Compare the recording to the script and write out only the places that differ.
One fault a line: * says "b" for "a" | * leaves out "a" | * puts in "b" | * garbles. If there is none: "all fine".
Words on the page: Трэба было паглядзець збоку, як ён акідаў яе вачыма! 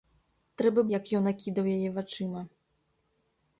* leaves out "было паглядзець збоку"